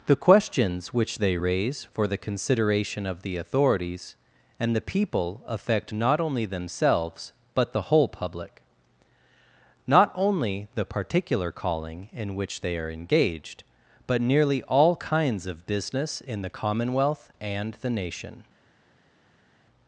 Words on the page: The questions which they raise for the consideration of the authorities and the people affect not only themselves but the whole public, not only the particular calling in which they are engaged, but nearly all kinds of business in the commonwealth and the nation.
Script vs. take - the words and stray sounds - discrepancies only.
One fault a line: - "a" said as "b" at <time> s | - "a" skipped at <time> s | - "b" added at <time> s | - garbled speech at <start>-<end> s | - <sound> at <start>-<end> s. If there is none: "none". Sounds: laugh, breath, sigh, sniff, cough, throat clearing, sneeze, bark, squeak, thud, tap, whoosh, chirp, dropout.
none